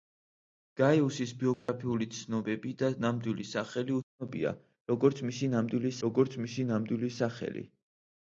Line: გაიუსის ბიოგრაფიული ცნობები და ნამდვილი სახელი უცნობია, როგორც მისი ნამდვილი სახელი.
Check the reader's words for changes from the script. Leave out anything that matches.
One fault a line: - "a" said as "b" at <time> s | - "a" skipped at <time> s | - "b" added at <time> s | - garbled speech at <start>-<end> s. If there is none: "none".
- "როგორც მისი ნამდვილი" added at 6.1 s